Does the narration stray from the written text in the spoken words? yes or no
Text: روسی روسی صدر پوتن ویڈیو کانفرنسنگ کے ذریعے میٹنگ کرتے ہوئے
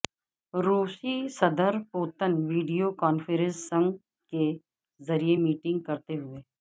yes